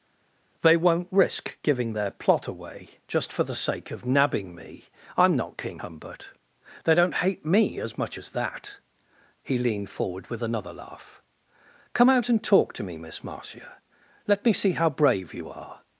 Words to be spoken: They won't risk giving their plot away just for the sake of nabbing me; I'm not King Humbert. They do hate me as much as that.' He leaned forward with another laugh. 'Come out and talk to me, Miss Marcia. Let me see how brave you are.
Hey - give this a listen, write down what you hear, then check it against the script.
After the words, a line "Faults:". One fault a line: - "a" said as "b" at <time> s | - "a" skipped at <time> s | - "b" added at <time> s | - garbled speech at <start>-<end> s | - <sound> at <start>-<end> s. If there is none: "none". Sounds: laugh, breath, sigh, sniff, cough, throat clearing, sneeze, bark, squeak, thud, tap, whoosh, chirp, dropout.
They won't risk giving their plot away just for the sake of nabbing me; I'm not King Humbert. They don't hate me as much as that.' He leaned forward with another laugh. 'Come out and talk to me, Miss Marcia. Let me see how brave you are.
Faults:
- "do" said as "don't" at 6.9 s